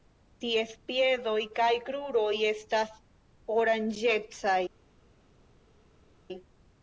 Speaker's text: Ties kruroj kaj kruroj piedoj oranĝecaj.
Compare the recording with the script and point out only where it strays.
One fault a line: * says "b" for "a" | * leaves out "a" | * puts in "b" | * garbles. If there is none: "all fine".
* says "piedoj" for "kruroj"
* says "estas" for "piedoj"